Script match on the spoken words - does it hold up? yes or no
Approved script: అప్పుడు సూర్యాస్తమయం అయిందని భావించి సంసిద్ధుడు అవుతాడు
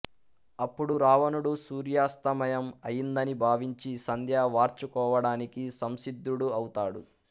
no